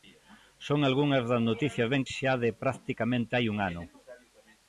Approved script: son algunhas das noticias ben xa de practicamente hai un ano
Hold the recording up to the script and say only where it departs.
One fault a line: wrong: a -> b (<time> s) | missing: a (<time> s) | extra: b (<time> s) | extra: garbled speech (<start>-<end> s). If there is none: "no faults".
no faults